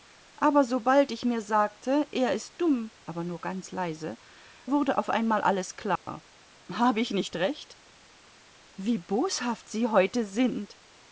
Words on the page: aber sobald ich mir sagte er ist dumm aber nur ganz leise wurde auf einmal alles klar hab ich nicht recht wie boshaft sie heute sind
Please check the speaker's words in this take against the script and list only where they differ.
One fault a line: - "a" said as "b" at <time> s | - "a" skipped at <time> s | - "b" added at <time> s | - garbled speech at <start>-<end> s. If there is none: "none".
none